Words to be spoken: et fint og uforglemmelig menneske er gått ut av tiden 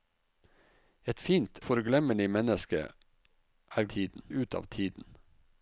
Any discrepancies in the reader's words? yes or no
yes